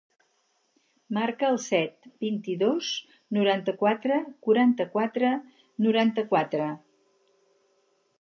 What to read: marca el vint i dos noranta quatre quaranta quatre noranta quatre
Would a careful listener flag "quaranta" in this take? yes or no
no